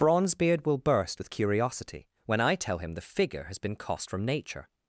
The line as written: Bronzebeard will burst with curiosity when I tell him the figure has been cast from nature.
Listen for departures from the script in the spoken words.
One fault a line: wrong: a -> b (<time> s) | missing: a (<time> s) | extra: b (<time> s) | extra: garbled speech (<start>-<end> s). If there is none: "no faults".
wrong: cast -> cost (3.7 s)